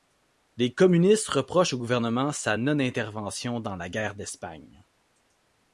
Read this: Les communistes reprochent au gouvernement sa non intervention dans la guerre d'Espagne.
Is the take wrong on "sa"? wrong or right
right